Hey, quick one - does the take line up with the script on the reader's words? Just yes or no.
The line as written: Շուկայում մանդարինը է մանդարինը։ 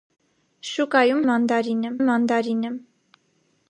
yes